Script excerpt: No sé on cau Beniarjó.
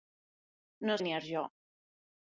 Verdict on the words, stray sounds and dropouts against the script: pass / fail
fail